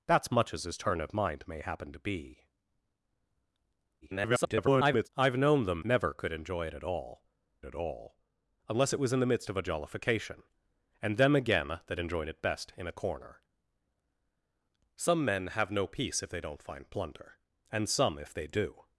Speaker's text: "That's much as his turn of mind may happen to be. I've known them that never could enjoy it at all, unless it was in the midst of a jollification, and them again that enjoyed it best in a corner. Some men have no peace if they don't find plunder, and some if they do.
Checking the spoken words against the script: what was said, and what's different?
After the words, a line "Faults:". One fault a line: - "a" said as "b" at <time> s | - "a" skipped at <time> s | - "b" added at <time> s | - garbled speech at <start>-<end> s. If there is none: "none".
"That's much as his turn of mind may happen to be. [garbled] I've known them never could enjoy it at all at all, unless it was in the midst of a jollification, and them again that enjoyed it best in a corner. Some men have no peace if they don't find plunder, and some if they do.
Faults:
- garbled speech at 4.0-5.1 s
- "that" skipped at 5.8 s
- "at all" added at 7.6 s